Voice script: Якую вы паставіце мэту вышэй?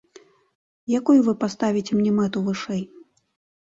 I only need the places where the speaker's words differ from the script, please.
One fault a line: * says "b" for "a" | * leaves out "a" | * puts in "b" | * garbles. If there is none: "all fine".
* puts in "мне"